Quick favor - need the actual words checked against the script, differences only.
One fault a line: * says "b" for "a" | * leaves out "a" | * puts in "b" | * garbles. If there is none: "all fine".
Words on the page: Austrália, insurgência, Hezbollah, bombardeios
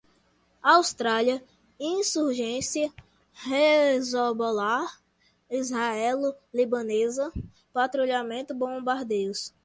* puts in "israelo libanesa patrulhamento"